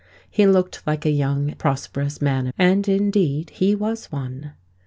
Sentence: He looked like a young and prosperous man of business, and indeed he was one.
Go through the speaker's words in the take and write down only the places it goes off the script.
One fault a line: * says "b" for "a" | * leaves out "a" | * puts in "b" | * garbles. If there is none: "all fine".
* leaves out "and"
* leaves out "of business"